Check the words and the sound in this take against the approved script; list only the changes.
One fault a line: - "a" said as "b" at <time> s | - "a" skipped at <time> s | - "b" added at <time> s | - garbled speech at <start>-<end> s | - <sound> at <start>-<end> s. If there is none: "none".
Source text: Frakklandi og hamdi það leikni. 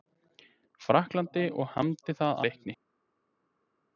none